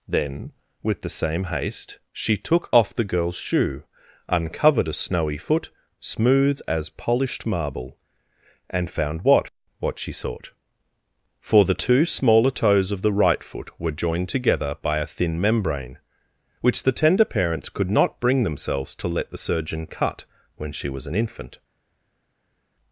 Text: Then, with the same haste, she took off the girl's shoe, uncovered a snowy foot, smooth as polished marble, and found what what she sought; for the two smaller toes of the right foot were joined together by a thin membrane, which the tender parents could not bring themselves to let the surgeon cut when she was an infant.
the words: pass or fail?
pass